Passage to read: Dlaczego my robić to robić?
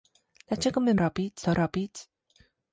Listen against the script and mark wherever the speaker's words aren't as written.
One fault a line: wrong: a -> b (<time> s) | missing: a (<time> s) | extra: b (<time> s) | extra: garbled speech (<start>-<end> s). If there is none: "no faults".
no faults